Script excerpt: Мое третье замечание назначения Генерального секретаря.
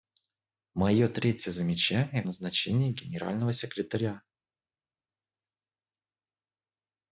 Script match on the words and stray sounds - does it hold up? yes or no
yes